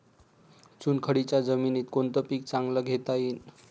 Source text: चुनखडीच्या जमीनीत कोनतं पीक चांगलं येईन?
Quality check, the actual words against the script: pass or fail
fail